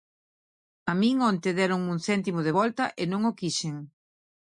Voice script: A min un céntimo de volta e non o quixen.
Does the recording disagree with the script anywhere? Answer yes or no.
yes